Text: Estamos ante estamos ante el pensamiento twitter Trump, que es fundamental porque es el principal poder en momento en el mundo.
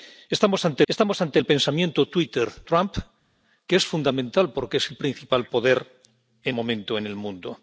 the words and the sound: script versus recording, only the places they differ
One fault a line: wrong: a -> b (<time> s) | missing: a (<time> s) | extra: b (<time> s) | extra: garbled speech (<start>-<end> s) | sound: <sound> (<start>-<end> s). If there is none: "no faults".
no faults